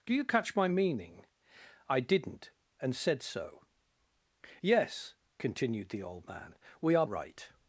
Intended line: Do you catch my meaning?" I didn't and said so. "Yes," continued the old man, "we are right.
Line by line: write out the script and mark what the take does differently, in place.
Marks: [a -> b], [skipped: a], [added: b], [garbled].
Do you catch my meaning?" I didn't and said so. "Yes," continued the old man, "we are right.